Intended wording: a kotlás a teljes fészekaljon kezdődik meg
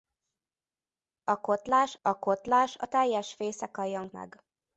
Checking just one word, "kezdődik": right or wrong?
wrong